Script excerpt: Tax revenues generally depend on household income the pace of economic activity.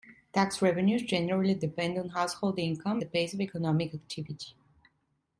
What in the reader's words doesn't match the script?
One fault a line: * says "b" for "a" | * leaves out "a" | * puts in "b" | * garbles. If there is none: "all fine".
all fine